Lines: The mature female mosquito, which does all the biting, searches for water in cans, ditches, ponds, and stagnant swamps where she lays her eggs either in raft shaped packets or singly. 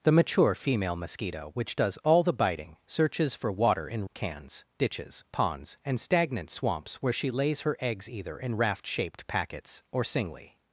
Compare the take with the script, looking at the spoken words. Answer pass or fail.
pass